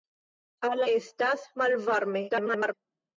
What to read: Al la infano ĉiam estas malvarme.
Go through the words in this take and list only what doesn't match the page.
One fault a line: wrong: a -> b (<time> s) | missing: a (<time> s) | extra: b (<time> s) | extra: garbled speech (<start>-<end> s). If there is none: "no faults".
missing: infano ĉiam (0.8 s)
extra: garbled speech (2.3-2.7 s)